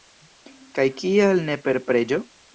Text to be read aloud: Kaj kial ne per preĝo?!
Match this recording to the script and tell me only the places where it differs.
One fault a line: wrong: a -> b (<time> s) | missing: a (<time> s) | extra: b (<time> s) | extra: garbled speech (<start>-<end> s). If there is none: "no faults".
no faults